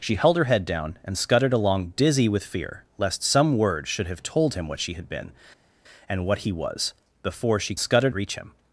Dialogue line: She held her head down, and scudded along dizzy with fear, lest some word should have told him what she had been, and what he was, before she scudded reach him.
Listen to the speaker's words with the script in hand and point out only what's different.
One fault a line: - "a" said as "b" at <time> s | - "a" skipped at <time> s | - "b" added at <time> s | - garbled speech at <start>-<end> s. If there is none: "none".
none